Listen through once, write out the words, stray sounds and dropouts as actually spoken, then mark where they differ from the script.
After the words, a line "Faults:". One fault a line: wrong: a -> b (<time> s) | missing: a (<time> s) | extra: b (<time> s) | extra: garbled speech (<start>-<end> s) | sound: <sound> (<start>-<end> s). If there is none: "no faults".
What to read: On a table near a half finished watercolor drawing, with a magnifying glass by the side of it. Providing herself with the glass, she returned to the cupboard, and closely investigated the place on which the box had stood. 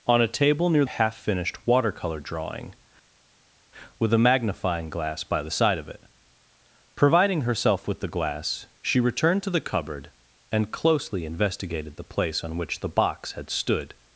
On a table near a half finished watercolor drawing, with a magnifying glass by the side of it. Providing herself with the glass, she returned to the cupboard, and closely investigated the place on which the box had stood.
Faults:
no faults